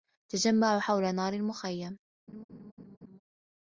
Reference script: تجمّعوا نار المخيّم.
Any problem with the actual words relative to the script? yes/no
yes